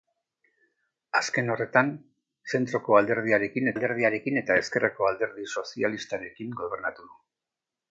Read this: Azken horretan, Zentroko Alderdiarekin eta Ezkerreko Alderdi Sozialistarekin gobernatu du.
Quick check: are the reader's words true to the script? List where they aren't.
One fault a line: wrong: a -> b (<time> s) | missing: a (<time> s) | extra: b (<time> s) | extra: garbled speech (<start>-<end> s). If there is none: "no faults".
extra: Alderdiarekin (3.8 s)